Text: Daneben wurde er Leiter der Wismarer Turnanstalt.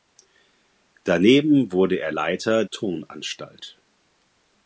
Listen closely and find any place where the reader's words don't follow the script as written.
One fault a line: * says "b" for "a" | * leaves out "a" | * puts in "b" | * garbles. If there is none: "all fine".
* leaves out "der Wismarer"